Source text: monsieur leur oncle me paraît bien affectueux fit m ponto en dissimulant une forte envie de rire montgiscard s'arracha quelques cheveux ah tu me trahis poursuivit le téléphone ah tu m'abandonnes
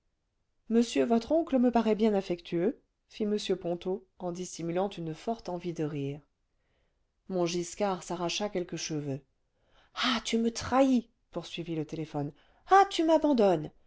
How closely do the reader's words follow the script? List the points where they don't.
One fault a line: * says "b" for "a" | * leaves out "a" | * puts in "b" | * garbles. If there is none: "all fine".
* says "votre" for "leur"